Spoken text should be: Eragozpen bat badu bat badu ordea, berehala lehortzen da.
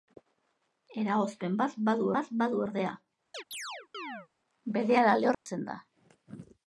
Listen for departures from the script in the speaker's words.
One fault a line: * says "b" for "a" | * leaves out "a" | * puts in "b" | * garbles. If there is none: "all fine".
all fine